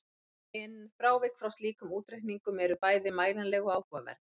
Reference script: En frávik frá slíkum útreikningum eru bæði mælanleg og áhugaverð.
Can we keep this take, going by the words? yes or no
yes